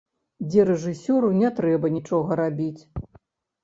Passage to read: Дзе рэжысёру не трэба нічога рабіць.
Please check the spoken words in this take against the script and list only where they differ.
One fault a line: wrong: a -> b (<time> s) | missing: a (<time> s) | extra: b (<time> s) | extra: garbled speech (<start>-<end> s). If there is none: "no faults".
no faults